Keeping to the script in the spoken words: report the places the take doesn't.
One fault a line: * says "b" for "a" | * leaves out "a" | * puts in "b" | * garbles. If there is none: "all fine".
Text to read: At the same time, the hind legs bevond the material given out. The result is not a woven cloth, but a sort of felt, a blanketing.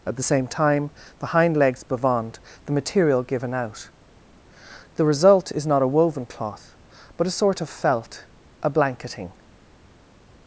all fine